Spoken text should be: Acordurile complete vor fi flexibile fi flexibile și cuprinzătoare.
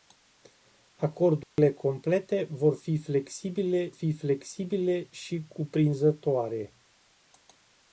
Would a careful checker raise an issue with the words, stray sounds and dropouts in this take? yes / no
yes